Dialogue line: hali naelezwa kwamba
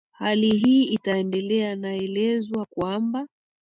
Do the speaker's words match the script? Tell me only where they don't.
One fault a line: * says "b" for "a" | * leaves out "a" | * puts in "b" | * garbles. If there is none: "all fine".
* puts in "hii itaendelea"